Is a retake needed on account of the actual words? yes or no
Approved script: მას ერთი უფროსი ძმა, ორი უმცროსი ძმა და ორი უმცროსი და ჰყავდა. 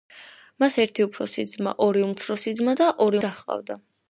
yes